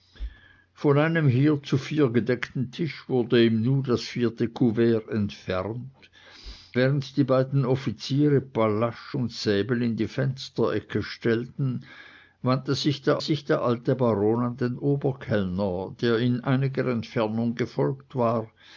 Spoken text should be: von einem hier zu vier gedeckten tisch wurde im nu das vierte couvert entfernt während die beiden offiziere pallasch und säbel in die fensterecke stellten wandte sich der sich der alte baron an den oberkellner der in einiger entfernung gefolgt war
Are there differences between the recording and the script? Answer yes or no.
no